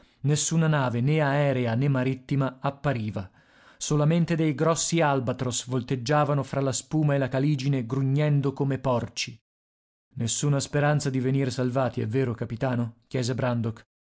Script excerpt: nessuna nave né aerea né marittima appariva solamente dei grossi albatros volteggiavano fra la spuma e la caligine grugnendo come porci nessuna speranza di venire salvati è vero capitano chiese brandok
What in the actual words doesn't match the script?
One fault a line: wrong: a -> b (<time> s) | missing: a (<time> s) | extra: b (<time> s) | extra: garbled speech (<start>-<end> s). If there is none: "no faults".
no faults